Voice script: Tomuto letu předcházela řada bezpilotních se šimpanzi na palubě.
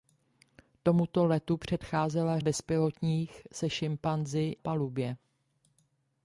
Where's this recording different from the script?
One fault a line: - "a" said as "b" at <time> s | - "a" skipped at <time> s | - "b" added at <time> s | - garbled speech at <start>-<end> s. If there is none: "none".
- "řada" skipped at 2.4 s
- "na" skipped at 4.6 s